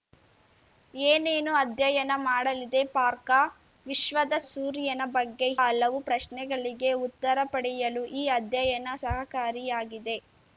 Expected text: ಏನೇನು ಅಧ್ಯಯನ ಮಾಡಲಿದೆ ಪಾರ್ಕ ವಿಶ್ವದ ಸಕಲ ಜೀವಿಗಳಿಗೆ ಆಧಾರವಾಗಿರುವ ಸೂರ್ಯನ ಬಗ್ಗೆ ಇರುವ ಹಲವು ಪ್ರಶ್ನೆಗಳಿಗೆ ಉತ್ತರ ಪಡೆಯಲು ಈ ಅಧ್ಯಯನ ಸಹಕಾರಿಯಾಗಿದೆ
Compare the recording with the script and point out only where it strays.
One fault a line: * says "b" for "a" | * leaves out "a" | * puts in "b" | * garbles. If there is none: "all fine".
* leaves out "ಸಕಲ ಜೀವಿಗಳಿಗೆ ಆಧಾರವಾಗಿರುವ"
* leaves out "ಇರುವ"